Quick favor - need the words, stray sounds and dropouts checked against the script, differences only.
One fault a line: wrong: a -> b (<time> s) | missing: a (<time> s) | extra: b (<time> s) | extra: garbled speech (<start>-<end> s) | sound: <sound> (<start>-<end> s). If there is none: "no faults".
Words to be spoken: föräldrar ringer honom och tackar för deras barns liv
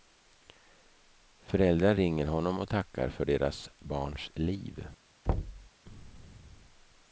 sound: thud (5.3-5.7 s)